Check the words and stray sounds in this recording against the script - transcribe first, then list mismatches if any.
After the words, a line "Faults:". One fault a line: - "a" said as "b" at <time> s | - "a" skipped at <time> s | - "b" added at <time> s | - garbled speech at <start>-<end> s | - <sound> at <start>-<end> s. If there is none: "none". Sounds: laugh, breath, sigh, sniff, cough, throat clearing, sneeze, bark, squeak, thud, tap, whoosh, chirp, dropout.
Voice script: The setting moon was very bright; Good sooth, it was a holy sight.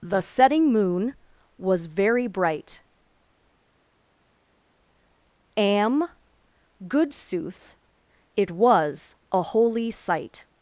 The setting moon was very bright; am Good sooth, it was a holy sight.
Faults:
- "am" added at 5.6 s